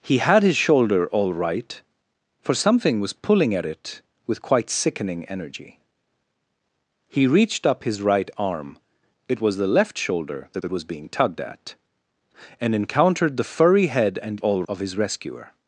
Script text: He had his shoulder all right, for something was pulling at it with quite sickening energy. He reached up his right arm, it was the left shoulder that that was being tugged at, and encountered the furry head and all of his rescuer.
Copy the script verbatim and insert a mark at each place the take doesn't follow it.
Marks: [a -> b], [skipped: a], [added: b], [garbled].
He had his shoulder all right, for something was pulling at it with quite sickening energy. He reached up his right arm, it was the left shoulder that that was being tugged at, and encountered the furry head and all of his rescuer.